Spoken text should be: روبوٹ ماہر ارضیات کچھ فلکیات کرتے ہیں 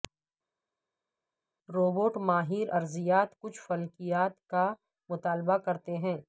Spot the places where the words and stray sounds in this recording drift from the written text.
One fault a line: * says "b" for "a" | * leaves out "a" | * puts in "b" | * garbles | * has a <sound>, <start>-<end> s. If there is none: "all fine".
* puts in "کا مطالعہ"